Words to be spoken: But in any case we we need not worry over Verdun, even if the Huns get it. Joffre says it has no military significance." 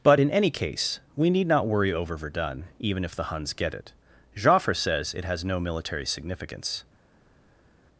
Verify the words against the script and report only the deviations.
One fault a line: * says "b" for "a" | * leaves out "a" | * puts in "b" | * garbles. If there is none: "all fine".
* leaves out "we"